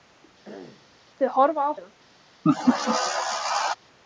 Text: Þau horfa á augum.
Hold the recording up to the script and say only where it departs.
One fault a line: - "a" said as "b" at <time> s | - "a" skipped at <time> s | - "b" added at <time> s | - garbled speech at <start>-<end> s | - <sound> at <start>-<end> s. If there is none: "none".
- throat clearing at 0.4-0.9 s
- laugh at 2.4-3.7 s